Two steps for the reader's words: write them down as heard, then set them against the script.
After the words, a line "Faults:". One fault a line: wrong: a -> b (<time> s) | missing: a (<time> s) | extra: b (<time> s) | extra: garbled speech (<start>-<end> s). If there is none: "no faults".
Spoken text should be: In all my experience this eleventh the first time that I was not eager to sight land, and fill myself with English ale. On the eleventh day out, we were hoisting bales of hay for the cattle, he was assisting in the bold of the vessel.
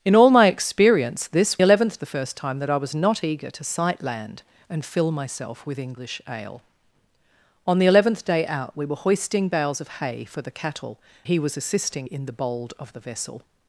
In all my experience this eleventh the first time that I was not eager to sight land, and fill myself with English ale. On the eleventh day out, we were hoisting bales of hay for the cattle, he was assisting in the bold of the vessel.
Faults:
no faults